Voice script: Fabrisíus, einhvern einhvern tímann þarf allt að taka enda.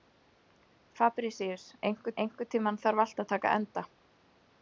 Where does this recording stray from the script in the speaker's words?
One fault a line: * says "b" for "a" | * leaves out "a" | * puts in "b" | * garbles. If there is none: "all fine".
all fine